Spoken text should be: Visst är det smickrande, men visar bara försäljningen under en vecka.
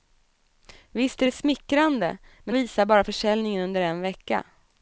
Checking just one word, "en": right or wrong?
right